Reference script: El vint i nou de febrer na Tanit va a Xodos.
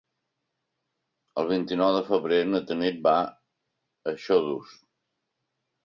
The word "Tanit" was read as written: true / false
true